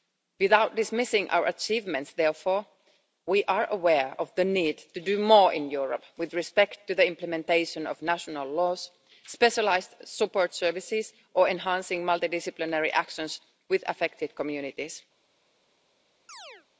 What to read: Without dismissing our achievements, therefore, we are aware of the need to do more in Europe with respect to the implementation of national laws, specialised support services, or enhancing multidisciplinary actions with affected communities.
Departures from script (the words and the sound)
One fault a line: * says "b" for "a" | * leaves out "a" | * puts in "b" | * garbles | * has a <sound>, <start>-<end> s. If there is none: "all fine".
* has a chirp, 16.3-16.7 s